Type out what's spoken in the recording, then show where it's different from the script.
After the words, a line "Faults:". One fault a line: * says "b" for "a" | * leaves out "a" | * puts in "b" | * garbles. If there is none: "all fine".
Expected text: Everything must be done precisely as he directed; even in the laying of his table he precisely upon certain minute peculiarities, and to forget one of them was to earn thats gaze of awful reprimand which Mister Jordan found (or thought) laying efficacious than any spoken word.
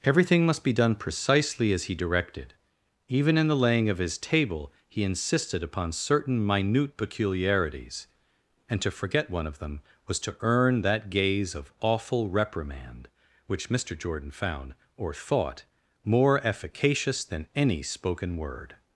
Everything must be done precisely as he directed; even in the laying of his table he insisted upon certain minute peculiarities, and to forget one of them was to earn that gaze of awful reprimand which Mister Jordan found (or thought) more efficacious than any spoken word.
Faults:
* says "insisted" for "precisely"
* says "that" for "thats"
* says "more" for "laying"